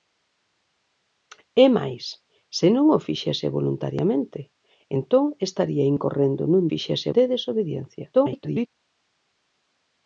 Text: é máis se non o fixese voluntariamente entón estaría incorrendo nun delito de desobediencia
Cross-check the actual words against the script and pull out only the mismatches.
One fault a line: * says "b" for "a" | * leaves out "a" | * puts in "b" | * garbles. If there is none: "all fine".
* says "fixese" for "delito"
* garbles